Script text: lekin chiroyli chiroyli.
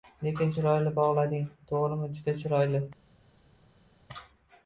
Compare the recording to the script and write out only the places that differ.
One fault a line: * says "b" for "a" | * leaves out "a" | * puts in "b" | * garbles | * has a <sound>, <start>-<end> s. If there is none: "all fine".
* puts in "bog‘lading to‘g‘rimi juda"